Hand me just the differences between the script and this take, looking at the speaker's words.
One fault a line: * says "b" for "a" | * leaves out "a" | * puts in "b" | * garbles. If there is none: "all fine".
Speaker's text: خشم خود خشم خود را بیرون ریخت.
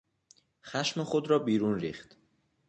* leaves out "خشم خود"